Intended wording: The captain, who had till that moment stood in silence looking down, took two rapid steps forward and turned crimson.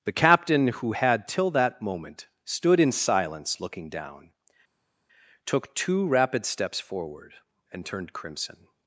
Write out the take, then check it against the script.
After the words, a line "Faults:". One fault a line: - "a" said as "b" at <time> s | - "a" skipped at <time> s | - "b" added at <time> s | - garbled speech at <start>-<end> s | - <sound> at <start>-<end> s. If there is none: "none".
The captain, who had till that moment stood in silence looking down, took two rapid steps forward and turned crimson.
Faults:
none